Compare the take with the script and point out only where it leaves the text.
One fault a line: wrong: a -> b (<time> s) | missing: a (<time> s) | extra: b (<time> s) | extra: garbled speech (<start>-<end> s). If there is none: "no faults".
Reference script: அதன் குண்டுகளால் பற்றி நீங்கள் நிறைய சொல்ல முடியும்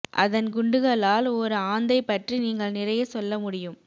extra: ஒரு ஆந்தை (1.3 s)